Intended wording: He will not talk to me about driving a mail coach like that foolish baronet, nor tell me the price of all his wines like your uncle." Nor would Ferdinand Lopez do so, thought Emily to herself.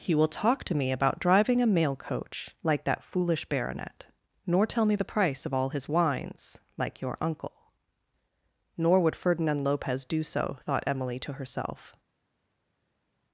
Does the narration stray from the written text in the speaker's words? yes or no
yes